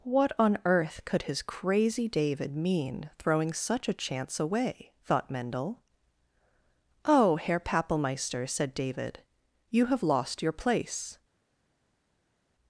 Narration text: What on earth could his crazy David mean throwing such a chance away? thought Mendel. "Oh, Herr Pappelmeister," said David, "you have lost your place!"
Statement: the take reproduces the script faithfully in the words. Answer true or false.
true